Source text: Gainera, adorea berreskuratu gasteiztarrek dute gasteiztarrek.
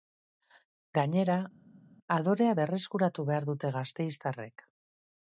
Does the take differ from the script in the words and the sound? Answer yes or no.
yes